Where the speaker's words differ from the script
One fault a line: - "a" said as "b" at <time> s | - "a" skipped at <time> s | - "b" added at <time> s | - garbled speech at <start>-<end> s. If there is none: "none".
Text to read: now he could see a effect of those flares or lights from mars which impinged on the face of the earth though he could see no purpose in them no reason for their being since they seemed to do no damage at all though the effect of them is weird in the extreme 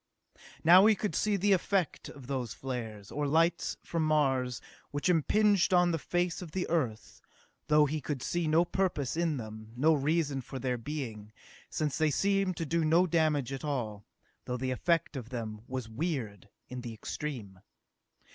- "a" said as "the" at 1.4 s
- "is" said as "was" at 15.7 s